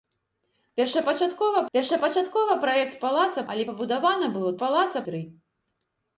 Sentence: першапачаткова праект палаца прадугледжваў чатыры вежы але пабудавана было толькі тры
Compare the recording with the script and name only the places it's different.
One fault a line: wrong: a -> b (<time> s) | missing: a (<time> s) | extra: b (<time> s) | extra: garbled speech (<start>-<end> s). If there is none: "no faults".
extra: першапачаткова (1.8 s)
missing: прадугледжваў чатыры вежы (3.4 s)
wrong: толькі -> палаца (4.6 s)